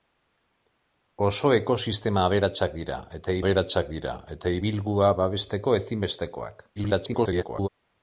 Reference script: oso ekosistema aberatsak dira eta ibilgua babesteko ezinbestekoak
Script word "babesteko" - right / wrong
right